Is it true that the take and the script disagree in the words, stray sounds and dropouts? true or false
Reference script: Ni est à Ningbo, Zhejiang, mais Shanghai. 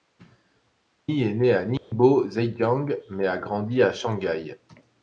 true